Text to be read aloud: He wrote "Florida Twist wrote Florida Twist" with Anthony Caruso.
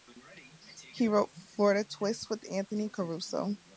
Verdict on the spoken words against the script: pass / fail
fail